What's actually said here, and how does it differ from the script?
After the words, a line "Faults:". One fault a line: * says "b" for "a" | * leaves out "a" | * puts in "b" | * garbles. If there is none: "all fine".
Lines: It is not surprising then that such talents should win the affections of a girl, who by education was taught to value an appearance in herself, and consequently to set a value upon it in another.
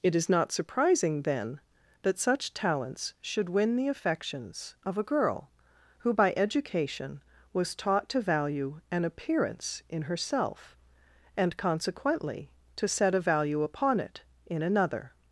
It is not surprising then that such talents should win the affections of a girl, who by education was taught to value an appearance in herself, and consequently to set a value upon it in another.
Faults:
all fine